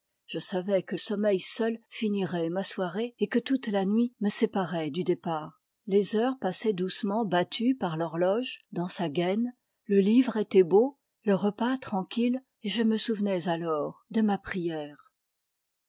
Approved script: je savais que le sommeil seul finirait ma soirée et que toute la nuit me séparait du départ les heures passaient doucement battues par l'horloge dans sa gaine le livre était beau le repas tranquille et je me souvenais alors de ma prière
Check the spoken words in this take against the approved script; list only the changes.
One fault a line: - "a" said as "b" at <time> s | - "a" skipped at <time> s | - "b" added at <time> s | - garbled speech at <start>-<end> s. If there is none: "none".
- "le" skipped at 0.9 s